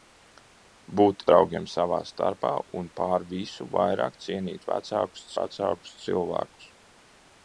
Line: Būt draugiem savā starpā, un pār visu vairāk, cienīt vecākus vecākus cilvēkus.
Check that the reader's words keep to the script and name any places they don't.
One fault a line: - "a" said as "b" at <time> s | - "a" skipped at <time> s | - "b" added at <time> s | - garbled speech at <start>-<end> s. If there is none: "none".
none